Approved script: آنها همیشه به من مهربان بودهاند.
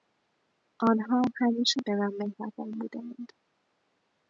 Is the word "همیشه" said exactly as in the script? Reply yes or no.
yes